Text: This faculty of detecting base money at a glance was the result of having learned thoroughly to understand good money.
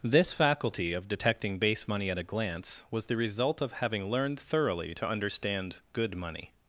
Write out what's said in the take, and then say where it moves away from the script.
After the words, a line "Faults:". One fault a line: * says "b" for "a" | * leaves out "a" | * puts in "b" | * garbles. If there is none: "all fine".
This faculty of detecting base money at a glance was the result of having learned thoroughly to understand good money.
Faults:
all fine